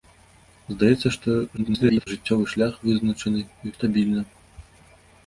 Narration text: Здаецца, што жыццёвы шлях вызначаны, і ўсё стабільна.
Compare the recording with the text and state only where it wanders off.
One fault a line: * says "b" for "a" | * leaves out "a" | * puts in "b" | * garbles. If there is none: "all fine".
* garbles
* leaves out "ўсё"